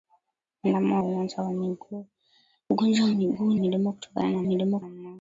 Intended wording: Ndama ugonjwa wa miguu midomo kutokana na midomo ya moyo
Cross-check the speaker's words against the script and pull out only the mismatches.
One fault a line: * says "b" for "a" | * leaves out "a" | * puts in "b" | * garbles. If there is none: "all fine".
all fine